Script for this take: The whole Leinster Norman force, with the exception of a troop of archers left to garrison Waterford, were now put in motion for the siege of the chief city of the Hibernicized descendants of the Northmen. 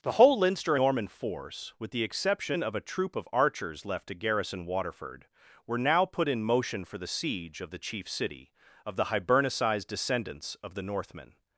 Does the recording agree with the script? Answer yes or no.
yes